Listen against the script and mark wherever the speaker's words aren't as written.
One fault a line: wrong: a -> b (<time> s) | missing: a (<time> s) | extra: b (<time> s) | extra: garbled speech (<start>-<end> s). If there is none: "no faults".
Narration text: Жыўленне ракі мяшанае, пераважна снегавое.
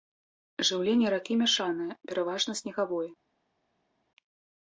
no faults